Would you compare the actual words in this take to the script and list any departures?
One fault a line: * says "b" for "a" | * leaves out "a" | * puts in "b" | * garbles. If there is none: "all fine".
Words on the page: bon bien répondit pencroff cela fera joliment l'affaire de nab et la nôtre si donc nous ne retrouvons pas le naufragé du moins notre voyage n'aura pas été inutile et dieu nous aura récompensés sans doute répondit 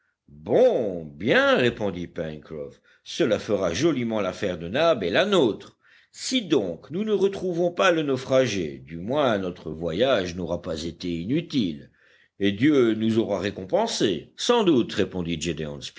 all fine